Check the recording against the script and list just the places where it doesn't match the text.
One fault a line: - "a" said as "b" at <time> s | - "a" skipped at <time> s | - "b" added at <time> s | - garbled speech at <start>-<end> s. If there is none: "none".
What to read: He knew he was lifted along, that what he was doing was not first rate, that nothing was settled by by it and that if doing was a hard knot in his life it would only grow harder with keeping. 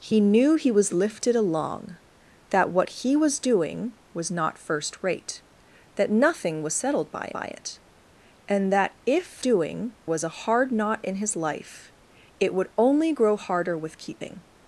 none